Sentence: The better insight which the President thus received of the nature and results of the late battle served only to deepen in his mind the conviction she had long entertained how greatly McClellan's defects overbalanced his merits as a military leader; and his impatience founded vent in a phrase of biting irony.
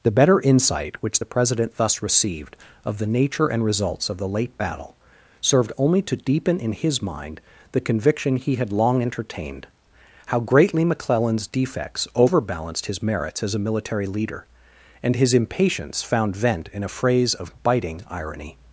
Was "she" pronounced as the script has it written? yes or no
no